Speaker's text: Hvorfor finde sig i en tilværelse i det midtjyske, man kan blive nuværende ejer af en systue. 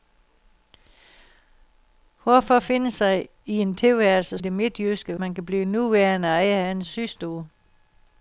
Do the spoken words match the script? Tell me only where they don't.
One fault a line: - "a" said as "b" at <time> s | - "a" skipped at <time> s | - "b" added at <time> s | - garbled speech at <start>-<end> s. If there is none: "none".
none